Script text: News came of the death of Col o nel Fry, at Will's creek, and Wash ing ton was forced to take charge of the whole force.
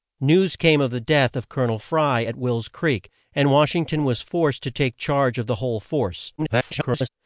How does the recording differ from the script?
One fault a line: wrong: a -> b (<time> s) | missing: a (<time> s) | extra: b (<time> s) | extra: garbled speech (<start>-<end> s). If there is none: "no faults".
extra: garbled speech (6.4-7.1 s)